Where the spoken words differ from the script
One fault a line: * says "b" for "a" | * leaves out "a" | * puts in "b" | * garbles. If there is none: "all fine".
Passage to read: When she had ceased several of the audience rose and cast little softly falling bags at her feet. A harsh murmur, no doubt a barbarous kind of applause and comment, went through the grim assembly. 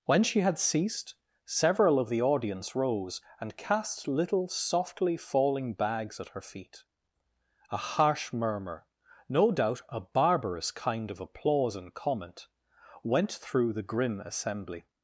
all fine